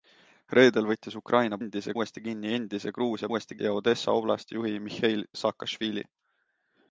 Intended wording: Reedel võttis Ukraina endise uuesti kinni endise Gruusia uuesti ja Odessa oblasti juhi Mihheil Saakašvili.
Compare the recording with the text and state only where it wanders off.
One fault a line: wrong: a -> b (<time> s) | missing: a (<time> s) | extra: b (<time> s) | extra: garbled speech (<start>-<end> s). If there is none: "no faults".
no faults